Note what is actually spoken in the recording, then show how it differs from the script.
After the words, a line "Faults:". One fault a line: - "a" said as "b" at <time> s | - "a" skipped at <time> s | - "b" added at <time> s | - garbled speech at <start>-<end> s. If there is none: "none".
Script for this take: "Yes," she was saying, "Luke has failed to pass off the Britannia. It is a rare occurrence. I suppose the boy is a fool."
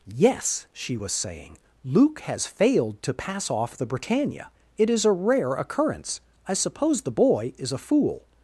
"Yes," she was saying, "Luke has failed to pass off the Britannia. It is a rare occurrence. I suppose the boy is a fool."
Faults:
none